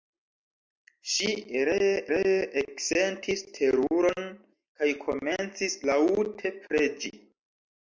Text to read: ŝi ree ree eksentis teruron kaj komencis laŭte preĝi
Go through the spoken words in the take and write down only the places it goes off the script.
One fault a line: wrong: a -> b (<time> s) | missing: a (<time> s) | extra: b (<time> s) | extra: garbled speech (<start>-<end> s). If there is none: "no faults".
no faults